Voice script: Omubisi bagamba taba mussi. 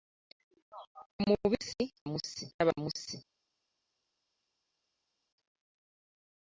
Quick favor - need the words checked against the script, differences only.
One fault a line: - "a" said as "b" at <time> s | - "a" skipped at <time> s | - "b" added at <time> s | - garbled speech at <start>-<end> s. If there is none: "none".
- "bagamba" said as "mussi" at 2.1 s